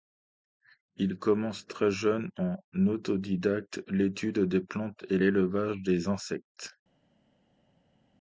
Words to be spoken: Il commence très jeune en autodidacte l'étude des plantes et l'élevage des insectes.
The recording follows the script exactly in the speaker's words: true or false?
true